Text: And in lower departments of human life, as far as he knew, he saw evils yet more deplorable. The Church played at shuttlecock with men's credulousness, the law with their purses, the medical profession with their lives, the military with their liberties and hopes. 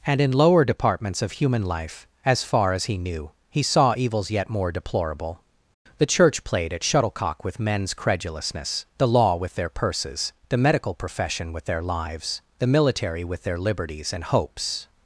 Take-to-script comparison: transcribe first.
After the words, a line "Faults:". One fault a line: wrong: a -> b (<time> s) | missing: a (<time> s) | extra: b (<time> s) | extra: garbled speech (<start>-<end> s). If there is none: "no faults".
And in lower departments of human life, as far as he knew, he saw evils yet more deplorable. The Church played at shuttlecock with men's credulousness, the law with their purses, the medical profession with their lives, the military with their liberties and hopes.
Faults:
no faults